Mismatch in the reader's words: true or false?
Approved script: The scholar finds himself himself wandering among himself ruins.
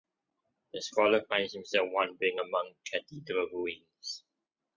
true